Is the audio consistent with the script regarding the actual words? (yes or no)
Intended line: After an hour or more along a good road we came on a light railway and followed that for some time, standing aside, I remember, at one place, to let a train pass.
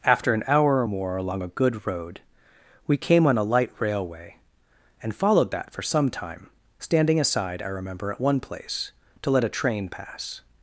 yes